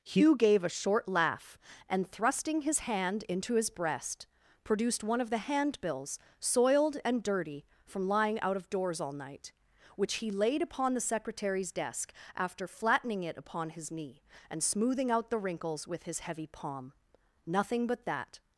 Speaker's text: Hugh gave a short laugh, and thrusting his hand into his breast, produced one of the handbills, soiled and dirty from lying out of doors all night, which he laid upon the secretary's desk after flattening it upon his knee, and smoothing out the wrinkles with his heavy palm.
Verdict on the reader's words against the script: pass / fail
fail